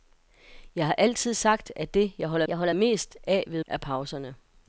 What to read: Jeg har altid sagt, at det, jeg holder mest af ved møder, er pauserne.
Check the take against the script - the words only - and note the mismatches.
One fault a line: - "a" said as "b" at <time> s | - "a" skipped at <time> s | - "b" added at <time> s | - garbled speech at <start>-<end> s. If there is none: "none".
- "jeg holder" added at 2.5 s
- "møder" skipped at 3.6 s